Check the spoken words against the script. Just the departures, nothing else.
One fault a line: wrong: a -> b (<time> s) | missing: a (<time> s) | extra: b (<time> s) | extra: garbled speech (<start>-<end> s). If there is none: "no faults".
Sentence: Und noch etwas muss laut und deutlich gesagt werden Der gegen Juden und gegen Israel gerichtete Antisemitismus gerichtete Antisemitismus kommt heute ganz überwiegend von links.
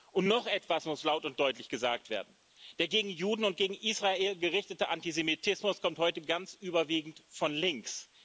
missing: gerichtete Antisemitismus (5.8 s)